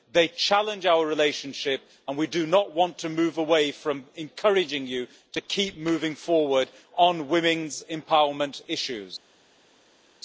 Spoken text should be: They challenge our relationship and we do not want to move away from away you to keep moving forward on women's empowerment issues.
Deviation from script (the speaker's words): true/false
true